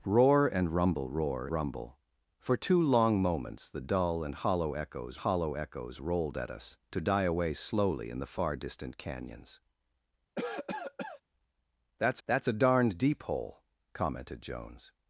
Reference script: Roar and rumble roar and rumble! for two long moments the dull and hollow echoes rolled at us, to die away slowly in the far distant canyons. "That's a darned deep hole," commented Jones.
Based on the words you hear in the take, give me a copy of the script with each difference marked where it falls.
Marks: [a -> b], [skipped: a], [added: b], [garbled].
Roar and rumble roar [skipped: and] rumble! for two long moments the dull and hollow echoes [added: hollow echoes] rolled at us, to die away slowly in the far distant canyons. "That's [added: that's] a darned deep hole," commented Jones.